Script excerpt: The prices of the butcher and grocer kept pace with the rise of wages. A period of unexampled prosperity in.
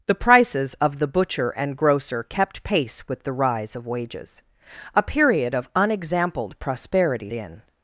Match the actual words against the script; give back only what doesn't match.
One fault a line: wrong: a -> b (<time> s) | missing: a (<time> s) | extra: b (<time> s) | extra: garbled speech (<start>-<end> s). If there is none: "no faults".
no faults